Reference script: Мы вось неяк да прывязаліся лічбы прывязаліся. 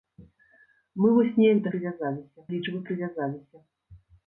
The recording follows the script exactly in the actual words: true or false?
true